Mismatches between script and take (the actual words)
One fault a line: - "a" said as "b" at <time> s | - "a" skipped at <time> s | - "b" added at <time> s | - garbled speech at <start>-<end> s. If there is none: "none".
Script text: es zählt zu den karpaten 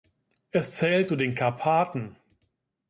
none